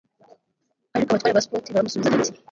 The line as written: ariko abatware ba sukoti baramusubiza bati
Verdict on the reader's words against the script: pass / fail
pass